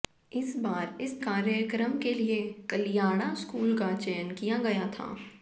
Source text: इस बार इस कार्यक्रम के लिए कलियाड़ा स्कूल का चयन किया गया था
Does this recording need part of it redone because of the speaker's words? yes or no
no